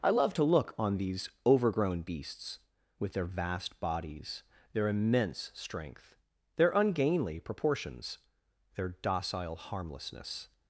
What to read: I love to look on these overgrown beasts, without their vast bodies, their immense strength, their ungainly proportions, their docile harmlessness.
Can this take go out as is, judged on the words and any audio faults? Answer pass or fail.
fail